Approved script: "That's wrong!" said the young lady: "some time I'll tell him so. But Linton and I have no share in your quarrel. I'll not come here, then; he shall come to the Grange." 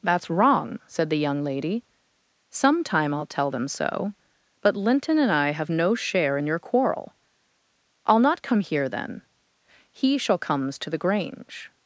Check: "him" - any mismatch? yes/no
yes